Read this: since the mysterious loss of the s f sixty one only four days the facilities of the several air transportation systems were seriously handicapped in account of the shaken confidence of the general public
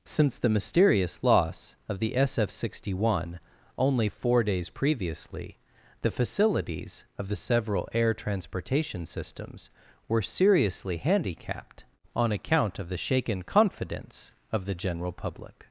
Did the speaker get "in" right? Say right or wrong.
wrong